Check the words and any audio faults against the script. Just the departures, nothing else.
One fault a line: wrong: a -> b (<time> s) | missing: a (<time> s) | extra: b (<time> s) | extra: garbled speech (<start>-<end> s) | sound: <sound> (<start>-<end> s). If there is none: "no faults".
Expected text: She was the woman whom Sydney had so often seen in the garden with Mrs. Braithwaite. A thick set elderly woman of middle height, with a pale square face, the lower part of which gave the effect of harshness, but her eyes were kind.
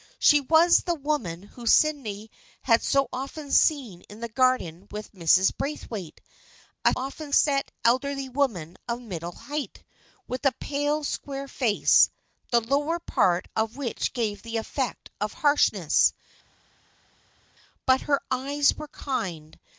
wrong: thick -> often (7.0 s)